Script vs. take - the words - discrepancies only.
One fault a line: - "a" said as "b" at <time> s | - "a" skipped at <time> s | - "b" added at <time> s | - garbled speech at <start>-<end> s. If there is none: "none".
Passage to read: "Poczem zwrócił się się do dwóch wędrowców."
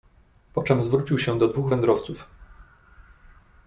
- "się" skipped at 1.4 s